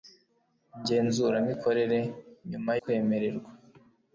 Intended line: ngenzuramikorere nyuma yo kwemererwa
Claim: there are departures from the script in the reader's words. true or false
true